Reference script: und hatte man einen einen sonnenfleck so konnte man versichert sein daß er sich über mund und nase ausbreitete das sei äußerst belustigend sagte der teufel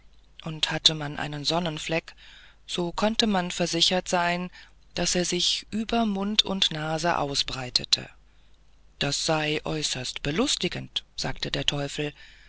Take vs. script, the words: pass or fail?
fail